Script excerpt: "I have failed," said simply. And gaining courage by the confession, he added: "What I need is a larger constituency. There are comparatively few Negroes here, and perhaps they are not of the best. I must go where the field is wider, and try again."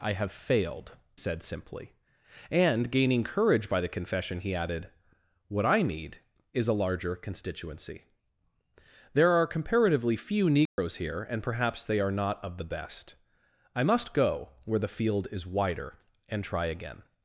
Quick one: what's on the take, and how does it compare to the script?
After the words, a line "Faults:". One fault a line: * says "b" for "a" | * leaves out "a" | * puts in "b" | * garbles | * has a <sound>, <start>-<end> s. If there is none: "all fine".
"I have failed," said simply. And gaining courage by the confession, he added: "What I need is a larger constituency. There are comparatively few Negroes here, and perhaps they are not of the best. I must go where the field is wider, and try again."
Faults:
* has a dropout, 10.7-10.8 s